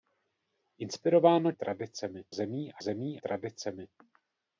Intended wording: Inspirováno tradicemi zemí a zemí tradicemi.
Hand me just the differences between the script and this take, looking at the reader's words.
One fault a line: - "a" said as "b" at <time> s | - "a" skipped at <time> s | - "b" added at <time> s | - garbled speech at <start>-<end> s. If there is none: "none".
none